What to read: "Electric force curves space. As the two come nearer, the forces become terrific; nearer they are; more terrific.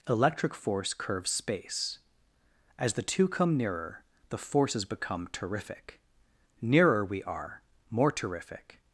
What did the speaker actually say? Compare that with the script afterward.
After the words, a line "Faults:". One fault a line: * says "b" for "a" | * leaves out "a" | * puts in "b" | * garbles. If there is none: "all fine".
"Electric force curves space. As the two come nearer, the forces become terrific; nearer we are; more terrific.
Faults:
* says "we" for "they"